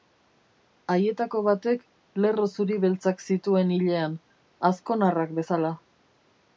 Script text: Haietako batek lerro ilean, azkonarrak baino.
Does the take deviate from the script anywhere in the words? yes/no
yes